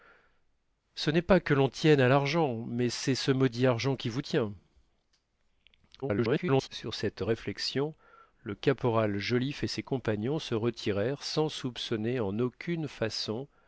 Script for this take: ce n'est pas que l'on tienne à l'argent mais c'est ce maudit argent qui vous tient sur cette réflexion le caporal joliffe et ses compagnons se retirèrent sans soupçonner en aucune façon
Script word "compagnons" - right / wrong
right